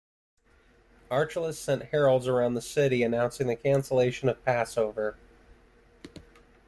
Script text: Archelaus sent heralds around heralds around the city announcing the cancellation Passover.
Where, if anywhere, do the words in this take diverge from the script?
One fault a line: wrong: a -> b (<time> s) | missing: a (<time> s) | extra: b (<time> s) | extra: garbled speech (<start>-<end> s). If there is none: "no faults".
missing: heralds around (2.5 s)
extra: of (4.3 s)